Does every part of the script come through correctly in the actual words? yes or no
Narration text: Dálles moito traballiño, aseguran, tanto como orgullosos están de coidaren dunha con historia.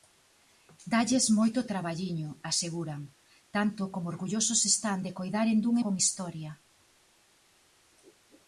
yes